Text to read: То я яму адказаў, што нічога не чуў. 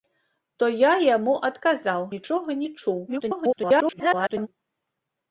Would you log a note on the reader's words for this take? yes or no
yes